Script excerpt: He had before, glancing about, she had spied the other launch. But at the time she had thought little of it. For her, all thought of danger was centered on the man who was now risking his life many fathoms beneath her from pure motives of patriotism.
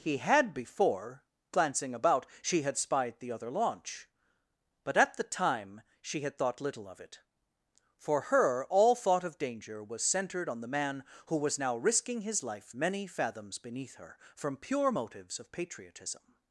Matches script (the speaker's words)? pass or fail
pass